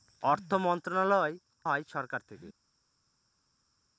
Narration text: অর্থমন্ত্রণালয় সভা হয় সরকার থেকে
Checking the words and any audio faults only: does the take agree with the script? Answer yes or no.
no